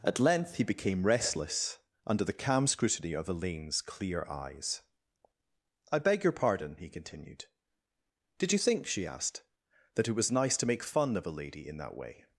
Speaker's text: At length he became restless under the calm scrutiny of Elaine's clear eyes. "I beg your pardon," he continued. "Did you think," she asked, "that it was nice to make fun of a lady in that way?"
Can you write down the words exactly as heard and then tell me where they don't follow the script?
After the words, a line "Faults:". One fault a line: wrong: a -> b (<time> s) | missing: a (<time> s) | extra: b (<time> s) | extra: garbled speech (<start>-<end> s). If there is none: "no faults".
At length he became restless under the calm scrutiny of Elaine's clear eyes. "I beg your pardon," he continued. "Did you think," she asked, "that it was nice to make fun of a lady in that way?"
Faults:
no faults